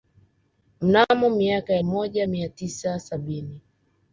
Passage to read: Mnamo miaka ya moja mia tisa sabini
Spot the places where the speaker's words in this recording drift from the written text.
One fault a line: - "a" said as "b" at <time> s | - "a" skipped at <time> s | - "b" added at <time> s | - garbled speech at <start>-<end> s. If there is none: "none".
none